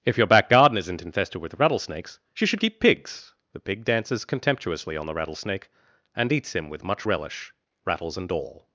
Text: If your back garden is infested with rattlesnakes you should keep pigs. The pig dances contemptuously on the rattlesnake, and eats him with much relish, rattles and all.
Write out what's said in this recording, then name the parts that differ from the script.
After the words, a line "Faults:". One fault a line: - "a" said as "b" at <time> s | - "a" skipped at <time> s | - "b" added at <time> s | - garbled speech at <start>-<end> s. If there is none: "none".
If your back garden isn't infested with rattlesnakes you should keep pigs. The pig dances contemptuously on the rattlesnake, and eats him with much relish, rattles and all.
Faults:
- "is" said as "isn't" at 0.8 s